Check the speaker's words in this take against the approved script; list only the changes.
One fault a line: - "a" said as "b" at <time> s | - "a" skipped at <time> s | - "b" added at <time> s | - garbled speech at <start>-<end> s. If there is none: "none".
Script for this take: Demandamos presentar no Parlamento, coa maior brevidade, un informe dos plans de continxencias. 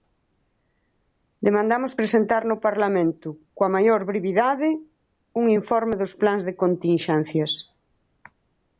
none